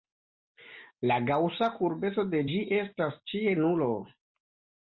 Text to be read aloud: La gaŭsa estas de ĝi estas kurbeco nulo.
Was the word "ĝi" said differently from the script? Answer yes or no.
no